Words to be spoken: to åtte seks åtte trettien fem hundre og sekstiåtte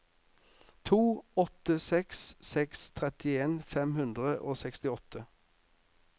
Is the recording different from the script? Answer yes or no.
yes